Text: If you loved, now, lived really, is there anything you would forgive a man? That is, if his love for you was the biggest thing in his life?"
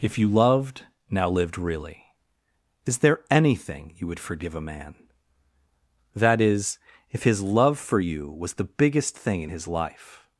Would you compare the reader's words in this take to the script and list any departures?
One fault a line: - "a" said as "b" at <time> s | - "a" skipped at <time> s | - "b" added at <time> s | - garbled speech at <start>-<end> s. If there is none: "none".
none